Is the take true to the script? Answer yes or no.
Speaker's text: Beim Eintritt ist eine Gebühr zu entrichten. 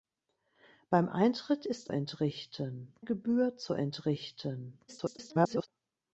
no